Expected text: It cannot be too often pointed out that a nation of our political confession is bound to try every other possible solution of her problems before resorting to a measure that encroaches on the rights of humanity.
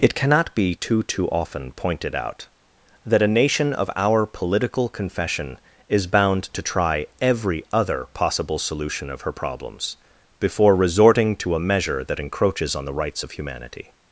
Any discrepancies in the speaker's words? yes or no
yes